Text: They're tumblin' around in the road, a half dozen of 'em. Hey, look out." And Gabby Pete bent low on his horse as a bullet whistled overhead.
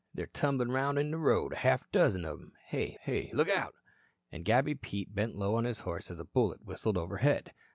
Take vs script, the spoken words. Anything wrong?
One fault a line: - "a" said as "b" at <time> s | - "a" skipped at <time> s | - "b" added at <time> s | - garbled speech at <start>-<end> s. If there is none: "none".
- "hey" added at 3.0 s